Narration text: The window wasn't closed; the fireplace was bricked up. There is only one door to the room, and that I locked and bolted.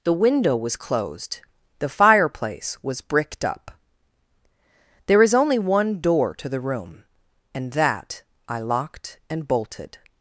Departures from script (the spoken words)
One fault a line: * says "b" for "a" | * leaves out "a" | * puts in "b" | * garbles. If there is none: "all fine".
* says "was" for "wasn't"